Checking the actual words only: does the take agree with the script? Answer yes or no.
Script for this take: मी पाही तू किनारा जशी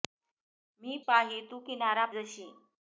yes